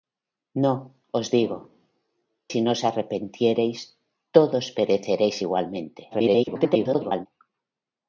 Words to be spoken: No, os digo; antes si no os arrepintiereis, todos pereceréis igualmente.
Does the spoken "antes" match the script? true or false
false